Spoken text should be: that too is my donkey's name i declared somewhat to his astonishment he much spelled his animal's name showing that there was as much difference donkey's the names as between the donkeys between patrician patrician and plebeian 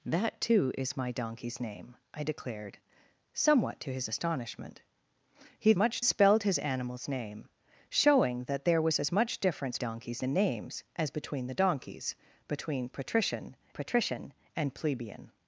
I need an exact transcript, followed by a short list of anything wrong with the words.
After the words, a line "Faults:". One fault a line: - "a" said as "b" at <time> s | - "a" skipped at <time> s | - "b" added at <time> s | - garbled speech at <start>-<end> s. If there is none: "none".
that too is my donkey's name i declared somewhat to his astonishment he much spelled his animal's name showing that there was as much difference donkey's the names as between the donkeys between patrician patrician and plebeian
Faults:
none